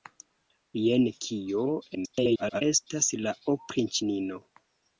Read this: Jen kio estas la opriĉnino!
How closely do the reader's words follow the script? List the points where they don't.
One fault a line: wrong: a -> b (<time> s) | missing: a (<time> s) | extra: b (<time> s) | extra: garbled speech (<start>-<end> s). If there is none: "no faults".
extra: garbled speech (1.9-2.6 s)